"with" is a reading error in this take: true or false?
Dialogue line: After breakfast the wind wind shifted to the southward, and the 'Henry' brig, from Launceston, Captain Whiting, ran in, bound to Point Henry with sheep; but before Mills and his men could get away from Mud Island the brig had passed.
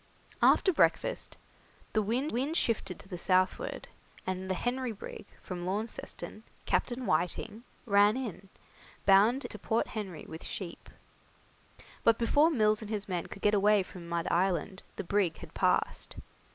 false